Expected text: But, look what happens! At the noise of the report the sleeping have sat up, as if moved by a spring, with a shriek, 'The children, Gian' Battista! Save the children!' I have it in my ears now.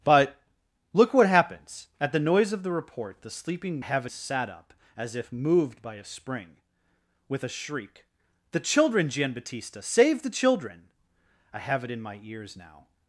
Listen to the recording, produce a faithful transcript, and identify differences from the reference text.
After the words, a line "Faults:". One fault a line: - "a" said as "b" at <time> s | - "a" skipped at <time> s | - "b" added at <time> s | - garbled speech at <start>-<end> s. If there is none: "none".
But, look what happens! At the noise of the report the sleeping have sat up, as if moved by a spring, with a shriek, 'The children, Gian' Battista! Save the children!' I have it in my ears now.
Faults:
none